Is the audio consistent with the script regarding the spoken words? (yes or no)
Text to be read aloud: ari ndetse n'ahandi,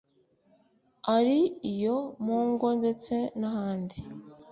no